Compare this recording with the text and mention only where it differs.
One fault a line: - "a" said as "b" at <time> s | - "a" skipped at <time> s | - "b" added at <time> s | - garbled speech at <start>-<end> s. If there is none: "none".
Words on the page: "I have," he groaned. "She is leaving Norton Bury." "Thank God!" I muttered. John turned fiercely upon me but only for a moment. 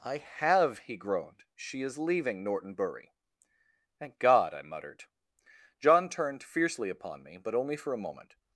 none